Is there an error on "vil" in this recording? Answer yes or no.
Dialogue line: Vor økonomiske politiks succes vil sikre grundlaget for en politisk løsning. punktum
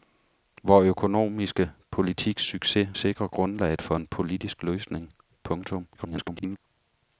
yes